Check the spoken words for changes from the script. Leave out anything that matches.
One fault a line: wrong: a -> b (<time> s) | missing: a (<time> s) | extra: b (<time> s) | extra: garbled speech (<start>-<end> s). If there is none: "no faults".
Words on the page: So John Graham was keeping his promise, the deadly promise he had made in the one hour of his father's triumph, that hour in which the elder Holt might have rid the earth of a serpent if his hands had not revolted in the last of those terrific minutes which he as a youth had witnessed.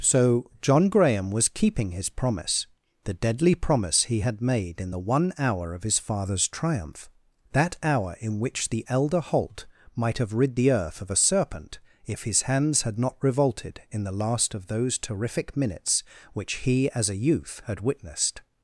no faults